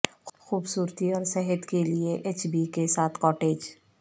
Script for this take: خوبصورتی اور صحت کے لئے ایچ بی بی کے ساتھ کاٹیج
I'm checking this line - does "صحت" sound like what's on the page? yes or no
yes